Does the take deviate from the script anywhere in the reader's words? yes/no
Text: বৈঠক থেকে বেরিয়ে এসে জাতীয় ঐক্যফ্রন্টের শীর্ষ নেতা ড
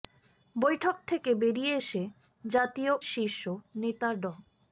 yes